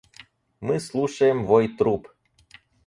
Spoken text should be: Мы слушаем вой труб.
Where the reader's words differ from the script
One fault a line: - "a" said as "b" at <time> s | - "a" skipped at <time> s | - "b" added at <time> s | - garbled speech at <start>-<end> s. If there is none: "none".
none